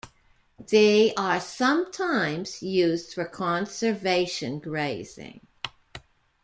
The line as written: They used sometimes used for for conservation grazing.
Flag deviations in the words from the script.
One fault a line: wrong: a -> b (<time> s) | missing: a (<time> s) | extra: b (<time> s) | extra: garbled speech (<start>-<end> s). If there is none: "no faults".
wrong: used -> are (1.2 s)
missing: for (3.2 s)